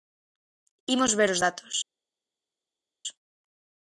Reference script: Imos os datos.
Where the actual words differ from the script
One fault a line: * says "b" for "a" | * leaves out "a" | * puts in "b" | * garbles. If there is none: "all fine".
* puts in "ver"